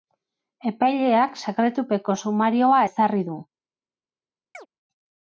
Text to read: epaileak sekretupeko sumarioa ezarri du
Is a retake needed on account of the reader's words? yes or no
no